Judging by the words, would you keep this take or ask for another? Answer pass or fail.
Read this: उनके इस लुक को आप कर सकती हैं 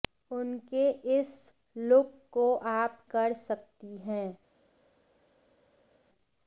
pass